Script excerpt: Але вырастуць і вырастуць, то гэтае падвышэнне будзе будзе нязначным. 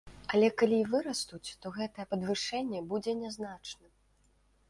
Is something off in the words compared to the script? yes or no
yes